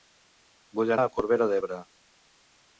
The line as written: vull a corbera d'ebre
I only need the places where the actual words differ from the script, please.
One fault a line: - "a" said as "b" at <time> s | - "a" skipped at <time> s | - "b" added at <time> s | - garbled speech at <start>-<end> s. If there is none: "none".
none